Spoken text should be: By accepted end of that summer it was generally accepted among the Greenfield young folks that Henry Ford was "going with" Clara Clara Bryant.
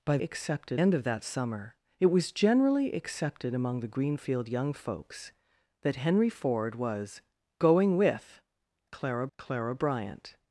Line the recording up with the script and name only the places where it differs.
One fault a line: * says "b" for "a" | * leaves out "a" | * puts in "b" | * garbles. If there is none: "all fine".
all fine